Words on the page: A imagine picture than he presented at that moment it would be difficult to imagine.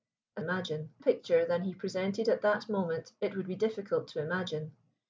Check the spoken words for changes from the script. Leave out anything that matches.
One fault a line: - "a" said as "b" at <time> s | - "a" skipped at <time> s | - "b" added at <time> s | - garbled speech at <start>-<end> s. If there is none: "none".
none